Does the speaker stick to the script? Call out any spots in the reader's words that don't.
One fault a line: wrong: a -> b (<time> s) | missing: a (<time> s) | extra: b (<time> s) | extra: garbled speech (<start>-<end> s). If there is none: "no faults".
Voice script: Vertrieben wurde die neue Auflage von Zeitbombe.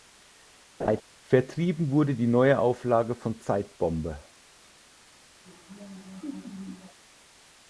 no faults